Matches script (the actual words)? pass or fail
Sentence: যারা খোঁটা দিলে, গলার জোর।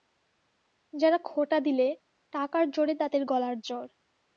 fail